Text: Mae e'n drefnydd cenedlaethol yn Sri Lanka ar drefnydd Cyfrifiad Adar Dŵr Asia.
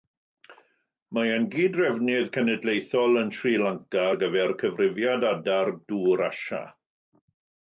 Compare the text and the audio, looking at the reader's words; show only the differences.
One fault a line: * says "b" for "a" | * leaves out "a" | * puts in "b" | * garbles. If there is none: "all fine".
* puts in "gyd"
* says "gyfer" for "drefnydd"